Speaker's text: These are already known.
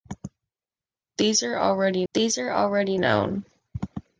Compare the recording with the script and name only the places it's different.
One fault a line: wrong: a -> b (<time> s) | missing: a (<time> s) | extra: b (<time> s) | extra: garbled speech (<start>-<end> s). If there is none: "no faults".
extra: these are already (2.1 s)